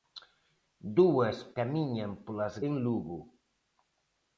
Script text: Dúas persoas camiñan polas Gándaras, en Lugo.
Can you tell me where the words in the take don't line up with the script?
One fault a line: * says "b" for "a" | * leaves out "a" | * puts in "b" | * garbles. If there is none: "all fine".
* leaves out "persoas"
* leaves out "Gándaras"